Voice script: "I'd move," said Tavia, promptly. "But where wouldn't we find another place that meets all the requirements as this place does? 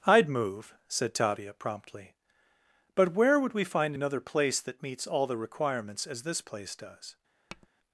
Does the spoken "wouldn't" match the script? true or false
false